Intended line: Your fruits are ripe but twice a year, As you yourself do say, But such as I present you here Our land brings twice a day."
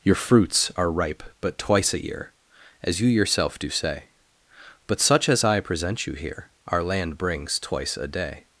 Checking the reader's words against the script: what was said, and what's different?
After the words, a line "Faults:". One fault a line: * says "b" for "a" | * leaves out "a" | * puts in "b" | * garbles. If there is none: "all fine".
Your fruits are ripe but twice a year, As you yourself do say, But such as I present you here Our land brings twice a day."
Faults:
all fine